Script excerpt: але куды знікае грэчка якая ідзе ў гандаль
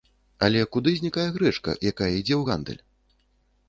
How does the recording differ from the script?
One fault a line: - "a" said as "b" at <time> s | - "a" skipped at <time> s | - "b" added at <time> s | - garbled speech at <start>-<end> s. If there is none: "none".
none